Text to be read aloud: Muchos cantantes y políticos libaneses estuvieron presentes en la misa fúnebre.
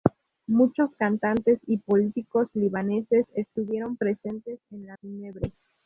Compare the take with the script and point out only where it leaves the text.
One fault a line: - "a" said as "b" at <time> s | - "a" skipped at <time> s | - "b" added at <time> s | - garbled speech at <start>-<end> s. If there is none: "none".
- "misa" skipped at 5.0 s